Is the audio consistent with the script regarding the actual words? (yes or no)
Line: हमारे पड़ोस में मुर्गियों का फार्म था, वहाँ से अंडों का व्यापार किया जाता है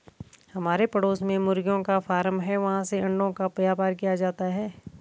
no